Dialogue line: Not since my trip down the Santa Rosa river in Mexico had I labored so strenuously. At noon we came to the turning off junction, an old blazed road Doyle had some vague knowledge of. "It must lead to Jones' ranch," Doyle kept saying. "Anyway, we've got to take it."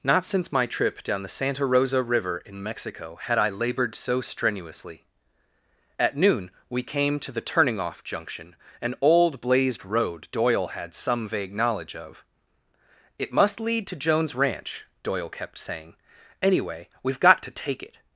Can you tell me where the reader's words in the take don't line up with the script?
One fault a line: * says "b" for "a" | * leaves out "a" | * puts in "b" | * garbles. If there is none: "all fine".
all fine